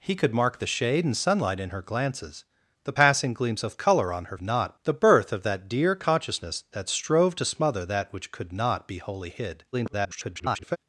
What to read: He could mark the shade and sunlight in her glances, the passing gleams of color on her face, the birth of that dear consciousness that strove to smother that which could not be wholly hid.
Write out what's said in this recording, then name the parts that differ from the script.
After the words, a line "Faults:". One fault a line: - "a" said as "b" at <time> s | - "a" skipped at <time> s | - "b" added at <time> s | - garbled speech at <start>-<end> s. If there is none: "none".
He could mark the shade and sunlight in her glances, the passing gleams of color on her not, the birth of that dear consciousness that strove to smother that which could not be wholly hid. [garbled]
Faults:
- "face" said as "not" at 4.4 s
- garbled speech at 9.7-10.8 s